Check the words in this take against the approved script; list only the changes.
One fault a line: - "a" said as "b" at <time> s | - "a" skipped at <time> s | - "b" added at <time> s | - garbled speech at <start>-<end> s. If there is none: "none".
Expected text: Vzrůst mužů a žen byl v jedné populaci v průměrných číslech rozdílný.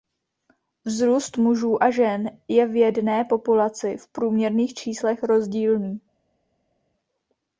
- "byl" said as "je" at 2.5 s